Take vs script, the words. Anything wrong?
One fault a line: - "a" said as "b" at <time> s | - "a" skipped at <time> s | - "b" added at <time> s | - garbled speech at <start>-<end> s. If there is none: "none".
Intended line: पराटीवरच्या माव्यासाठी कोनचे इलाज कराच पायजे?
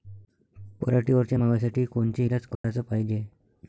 none